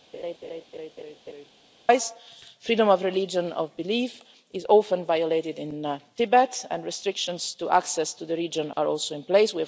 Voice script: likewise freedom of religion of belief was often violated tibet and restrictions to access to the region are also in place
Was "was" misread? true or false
true